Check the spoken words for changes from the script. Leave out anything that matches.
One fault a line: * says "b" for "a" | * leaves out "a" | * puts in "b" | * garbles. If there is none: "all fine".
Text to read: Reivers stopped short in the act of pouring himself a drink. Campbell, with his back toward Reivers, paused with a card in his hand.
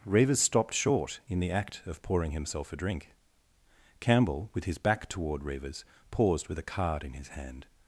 all fine